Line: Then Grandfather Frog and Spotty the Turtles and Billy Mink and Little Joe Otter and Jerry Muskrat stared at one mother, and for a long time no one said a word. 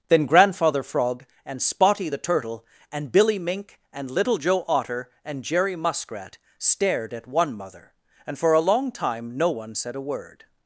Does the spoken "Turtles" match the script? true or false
false